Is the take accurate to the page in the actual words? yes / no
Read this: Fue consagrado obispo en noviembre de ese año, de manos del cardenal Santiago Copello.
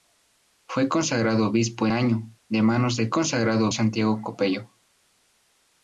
no